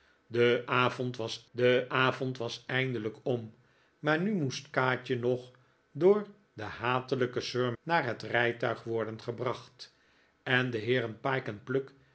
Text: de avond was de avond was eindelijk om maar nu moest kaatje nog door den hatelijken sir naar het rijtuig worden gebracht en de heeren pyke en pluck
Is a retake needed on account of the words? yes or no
no